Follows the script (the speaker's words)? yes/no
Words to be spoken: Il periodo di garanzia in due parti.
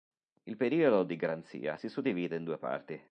no